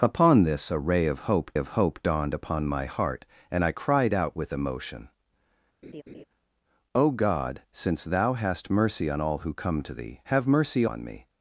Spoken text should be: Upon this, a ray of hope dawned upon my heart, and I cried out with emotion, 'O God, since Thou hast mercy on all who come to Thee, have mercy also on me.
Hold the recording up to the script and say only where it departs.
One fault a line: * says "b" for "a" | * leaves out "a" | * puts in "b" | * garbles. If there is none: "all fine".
* puts in "of hope"
* leaves out "also"